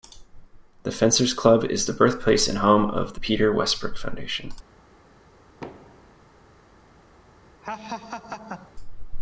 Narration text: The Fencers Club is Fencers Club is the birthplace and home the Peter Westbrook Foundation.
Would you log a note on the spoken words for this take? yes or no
yes